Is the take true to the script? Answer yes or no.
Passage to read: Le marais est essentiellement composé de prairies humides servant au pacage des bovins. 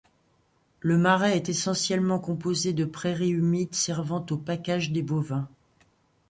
yes